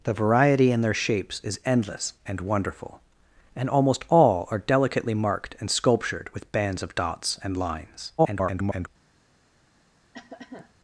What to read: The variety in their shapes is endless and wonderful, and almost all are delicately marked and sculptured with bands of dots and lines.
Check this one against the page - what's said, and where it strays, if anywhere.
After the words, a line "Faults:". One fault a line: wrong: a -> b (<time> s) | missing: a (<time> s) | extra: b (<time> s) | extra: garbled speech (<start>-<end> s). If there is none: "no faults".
The variety in their shapes is endless and wonderful, and almost all are delicately marked and sculptured with bands of dots and lines. [garbled]
Faults:
extra: garbled speech (8.2-8.9 s)